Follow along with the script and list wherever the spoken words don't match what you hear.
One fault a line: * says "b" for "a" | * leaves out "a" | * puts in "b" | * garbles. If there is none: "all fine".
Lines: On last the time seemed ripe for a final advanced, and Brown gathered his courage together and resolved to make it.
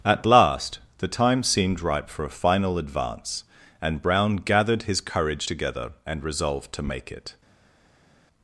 * says "At" for "On"
* says "advance" for "advanced"